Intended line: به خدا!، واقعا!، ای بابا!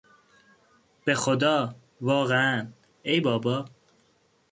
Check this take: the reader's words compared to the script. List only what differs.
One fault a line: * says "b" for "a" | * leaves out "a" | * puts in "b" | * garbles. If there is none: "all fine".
all fine